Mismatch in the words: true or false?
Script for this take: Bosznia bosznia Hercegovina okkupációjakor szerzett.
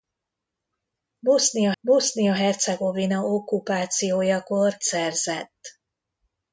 false